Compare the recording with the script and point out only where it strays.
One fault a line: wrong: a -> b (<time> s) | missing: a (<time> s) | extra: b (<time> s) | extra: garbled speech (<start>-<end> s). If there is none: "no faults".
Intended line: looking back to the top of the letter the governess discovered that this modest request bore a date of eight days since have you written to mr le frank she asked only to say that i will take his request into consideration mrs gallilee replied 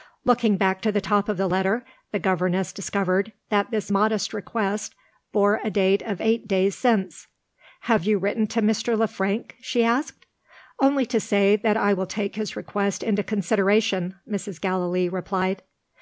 no faults